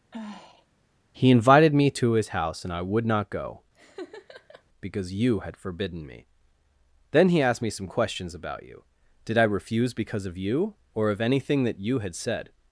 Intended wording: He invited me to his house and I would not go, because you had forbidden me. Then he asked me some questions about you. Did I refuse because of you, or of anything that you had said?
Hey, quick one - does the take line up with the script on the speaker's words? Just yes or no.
yes